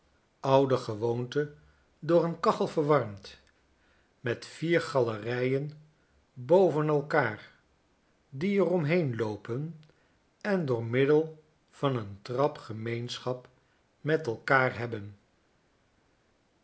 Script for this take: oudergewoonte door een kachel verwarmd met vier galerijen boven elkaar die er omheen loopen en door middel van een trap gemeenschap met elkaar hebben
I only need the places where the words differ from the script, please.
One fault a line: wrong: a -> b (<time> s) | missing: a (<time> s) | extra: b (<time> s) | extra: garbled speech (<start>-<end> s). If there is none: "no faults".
no faults